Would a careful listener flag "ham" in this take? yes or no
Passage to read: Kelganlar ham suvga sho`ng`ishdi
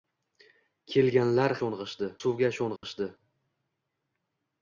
yes